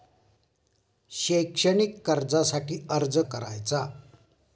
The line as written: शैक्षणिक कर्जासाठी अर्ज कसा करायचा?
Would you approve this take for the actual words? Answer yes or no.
no